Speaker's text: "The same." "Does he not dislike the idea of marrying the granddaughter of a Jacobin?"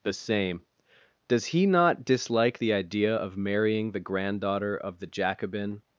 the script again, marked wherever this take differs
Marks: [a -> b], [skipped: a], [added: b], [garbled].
"The same." "Does he not dislike the idea of marrying the granddaughter of [a -> the] Jacobin?"